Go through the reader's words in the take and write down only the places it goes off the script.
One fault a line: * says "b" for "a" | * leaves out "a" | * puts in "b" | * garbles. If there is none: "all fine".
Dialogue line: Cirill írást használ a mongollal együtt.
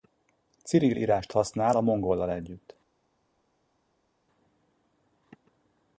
all fine